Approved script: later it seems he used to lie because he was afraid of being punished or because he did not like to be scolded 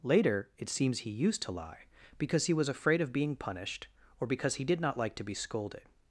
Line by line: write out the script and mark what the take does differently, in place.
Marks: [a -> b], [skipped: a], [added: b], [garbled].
later it seems he used to lie because he was afraid of being punished or because he did not like to be scolded